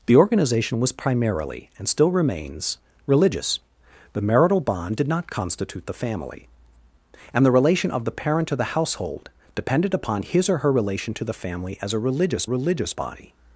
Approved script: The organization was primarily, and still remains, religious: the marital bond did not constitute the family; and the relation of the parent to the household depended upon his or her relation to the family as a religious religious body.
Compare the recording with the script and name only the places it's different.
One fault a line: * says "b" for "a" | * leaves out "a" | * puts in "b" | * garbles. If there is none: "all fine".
all fine